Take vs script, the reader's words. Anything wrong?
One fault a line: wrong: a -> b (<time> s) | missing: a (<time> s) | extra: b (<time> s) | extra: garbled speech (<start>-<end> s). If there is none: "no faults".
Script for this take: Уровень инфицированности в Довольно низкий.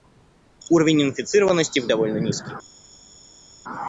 no faults